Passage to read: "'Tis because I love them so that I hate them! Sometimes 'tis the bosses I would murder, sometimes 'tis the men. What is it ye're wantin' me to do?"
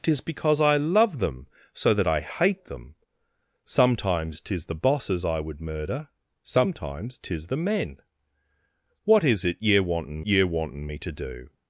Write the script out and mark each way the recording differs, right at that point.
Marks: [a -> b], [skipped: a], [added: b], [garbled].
"'Tis because I love them so that I hate them! Sometimes 'tis the bosses I would murder, sometimes 'tis the men. What is it ye're wantin' [added: ye're wantin] me to do?"